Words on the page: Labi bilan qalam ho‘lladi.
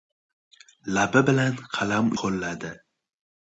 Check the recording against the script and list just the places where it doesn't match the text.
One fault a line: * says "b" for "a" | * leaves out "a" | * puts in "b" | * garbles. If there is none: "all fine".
all fine